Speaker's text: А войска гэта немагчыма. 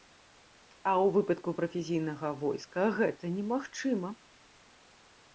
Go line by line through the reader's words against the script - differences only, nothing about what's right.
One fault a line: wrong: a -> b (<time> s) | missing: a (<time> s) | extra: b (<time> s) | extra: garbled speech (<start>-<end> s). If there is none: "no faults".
extra: ў выпадку прафесійнага (0.9 s)